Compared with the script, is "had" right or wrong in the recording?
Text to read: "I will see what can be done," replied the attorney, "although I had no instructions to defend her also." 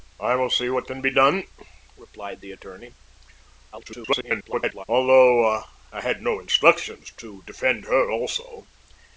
right